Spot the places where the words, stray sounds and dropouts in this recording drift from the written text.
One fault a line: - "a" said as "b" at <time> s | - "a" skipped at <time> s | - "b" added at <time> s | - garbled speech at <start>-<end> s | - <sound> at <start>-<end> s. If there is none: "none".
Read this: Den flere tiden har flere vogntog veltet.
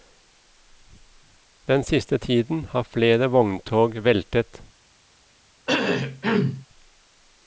- "flere" said as "siste" at 1.8 s
- cough at 5.7-6.7 s